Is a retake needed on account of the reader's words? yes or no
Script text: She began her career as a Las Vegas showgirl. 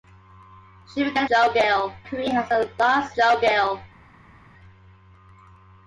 yes